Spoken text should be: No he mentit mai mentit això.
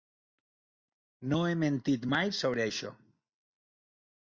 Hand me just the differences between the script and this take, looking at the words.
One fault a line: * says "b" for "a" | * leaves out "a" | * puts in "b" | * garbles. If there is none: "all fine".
* says "sobre" for "mentit"